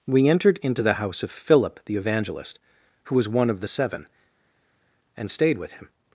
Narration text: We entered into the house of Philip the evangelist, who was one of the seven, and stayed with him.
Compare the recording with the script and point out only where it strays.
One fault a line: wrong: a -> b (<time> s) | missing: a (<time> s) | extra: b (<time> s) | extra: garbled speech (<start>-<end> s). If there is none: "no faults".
no faults